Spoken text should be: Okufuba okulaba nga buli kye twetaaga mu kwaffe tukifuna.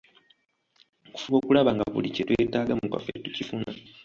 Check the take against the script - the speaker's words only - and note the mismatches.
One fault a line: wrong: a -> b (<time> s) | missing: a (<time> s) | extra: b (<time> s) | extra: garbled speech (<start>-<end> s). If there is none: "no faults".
no faults